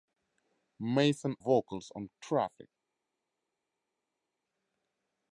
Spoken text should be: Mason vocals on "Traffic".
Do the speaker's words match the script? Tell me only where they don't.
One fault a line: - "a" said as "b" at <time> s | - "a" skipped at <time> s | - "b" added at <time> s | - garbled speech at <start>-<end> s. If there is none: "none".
none